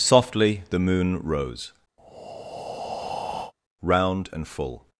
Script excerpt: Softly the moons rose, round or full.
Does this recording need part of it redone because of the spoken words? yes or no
yes